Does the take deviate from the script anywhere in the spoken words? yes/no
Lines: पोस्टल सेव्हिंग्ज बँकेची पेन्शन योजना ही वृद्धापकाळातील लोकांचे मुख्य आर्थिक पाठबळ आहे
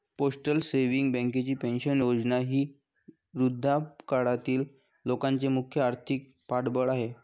no